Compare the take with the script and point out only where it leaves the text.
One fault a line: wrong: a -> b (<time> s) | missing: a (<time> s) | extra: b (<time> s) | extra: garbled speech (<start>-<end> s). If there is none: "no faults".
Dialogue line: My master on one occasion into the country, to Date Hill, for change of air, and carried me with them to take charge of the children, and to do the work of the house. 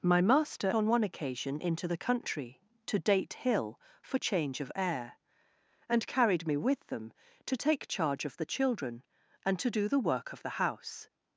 no faults